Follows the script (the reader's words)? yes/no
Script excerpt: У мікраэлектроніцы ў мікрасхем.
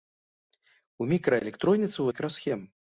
yes